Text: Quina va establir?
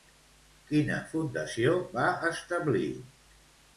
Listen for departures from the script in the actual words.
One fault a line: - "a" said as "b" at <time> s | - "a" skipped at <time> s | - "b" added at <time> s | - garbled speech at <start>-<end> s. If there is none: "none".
- "fundació" added at 1.1 s